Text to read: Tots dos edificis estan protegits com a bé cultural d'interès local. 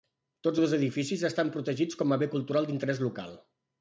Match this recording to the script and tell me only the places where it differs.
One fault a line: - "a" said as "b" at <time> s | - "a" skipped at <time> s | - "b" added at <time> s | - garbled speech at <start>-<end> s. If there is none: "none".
none